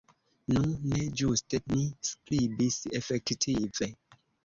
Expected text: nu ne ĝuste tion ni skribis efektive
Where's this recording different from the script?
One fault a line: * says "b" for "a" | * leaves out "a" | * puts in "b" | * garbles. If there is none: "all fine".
* leaves out "tion"